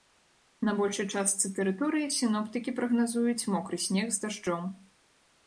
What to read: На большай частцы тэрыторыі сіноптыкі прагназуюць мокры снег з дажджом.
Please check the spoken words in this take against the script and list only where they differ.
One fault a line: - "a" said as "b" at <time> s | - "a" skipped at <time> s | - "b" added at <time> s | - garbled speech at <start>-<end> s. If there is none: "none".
none